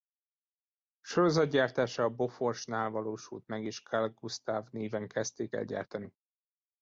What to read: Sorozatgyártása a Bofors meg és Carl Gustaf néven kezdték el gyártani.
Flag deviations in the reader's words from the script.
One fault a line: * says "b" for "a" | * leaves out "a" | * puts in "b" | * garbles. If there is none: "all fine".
* puts in "nál valósult"